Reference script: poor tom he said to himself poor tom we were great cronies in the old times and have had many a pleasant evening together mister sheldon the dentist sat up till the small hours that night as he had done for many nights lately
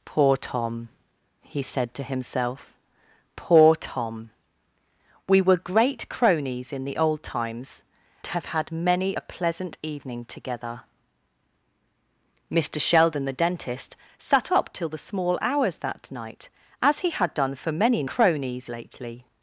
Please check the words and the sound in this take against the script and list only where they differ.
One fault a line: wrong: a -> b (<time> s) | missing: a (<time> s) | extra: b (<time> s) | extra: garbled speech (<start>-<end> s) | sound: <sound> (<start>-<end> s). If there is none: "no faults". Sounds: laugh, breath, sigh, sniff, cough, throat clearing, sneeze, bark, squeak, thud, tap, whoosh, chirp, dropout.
missing: and (7.8 s)
wrong: nights -> cronies (18.1 s)